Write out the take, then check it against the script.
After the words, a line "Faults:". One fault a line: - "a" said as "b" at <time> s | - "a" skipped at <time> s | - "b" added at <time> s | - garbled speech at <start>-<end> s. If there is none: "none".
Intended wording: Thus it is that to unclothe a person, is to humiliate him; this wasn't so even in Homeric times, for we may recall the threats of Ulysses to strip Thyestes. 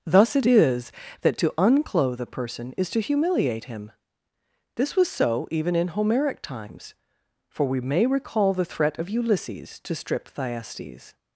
Thus it is that to unclothe a person, is to humiliate him; this was so even in Homeric times, for we may recall the threat of Ulysses to strip Thyestes.
Faults:
- "wasn't" said as "was" at 5.0 s
- "threats" said as "threat" at 8.7 s